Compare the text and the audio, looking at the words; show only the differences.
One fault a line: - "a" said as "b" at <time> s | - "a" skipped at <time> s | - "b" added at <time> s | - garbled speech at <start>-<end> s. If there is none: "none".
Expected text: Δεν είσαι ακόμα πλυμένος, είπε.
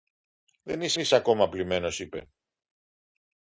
- "είσαι" added at 1.0 s